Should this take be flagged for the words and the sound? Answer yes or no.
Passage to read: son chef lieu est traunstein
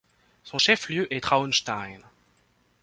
no